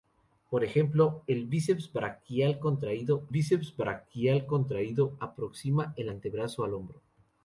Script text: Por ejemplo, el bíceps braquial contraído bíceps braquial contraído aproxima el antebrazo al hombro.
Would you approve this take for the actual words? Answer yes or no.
yes